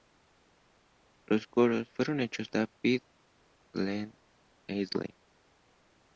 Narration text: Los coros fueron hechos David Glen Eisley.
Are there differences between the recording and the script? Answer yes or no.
no